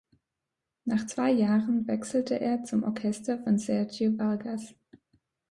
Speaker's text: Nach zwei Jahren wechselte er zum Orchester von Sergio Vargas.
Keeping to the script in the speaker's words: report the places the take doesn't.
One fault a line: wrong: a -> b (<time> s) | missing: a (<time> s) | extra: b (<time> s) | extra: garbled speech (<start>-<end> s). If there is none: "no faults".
no faults